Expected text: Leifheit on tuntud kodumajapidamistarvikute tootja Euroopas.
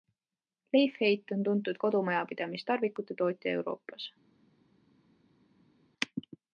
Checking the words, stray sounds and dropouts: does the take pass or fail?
pass